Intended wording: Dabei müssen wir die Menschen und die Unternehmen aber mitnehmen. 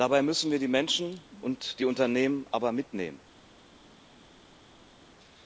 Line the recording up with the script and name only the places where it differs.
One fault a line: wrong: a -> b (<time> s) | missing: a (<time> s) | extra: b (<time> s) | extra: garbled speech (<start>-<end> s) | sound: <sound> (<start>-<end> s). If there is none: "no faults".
no faults